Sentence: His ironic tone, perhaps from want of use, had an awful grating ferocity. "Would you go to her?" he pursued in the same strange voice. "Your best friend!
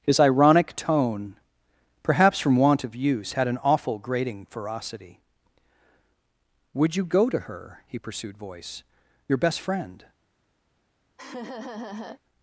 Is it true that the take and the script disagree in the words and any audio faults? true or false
true